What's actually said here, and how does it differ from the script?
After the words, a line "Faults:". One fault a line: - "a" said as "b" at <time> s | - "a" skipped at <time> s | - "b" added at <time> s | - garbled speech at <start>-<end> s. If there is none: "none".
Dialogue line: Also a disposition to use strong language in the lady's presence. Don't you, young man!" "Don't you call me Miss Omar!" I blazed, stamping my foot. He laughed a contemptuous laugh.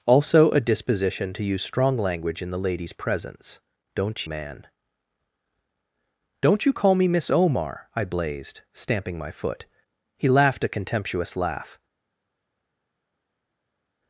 Also a disposition to use strong language in the lady's presence. Don't man!" "Don't you call me Miss Omar!" I blazed, stamping my foot. He laughed a contemptuous laugh.
Faults:
- "you young" skipped at 4.3 s